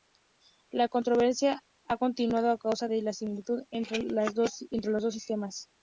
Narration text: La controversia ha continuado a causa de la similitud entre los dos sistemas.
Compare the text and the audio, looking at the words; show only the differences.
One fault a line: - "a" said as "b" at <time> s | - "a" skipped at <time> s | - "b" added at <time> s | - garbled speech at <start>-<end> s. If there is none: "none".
none